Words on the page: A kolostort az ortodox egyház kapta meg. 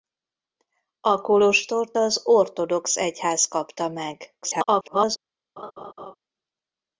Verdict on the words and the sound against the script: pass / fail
fail